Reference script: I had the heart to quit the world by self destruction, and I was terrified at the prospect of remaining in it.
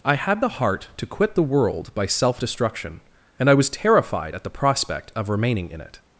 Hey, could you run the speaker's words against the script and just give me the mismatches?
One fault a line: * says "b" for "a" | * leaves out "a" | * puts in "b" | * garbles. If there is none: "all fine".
all fine